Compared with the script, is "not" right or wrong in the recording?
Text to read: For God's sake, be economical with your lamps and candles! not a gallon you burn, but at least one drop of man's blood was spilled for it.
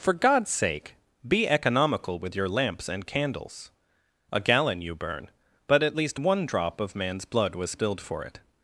wrong